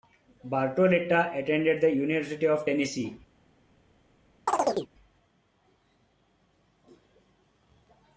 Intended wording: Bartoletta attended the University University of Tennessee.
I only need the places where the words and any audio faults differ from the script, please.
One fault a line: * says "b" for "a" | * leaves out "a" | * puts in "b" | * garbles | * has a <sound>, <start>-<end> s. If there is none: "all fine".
* leaves out "University"
* has a chirp, 4.5-4.9 s